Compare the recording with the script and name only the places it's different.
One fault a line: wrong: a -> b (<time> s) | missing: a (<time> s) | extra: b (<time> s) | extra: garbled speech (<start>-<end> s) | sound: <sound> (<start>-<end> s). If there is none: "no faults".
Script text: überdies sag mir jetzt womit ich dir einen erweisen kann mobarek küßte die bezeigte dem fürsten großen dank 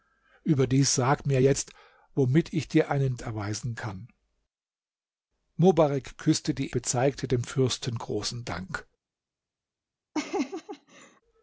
sound: laugh (10.1-11.2 s)